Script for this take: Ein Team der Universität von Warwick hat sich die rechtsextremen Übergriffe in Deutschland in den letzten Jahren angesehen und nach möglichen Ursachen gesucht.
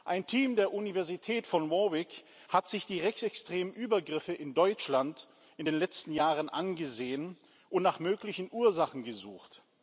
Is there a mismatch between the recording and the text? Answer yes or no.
no